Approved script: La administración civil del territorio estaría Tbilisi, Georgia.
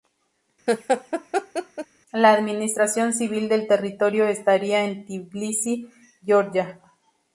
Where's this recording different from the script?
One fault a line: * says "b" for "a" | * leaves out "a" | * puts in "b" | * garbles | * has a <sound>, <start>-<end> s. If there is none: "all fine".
* has a laugh, 0.7-1.9 s
* puts in "en"